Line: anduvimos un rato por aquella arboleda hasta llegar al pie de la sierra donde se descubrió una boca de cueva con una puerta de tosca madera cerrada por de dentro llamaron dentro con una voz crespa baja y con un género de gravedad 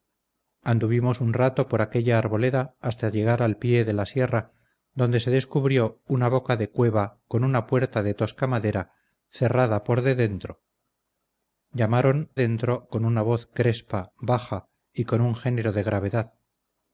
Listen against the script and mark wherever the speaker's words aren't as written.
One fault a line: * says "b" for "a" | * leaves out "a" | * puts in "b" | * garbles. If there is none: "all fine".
all fine